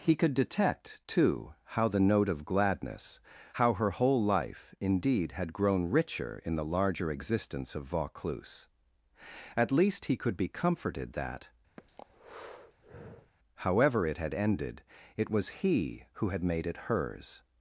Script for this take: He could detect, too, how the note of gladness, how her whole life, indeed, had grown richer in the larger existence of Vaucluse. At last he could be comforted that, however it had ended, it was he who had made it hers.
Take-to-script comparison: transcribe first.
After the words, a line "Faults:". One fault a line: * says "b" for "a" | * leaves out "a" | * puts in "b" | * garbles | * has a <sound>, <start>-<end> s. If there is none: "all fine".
He could detect, too, how the note of gladness, how her whole life, indeed, had grown richer in the larger existence of Vaucluse. At least he could be comforted that, however it had ended, it was he who had made it hers.
Faults:
* says "least" for "last"
* has a breath, 11.8-13.3 s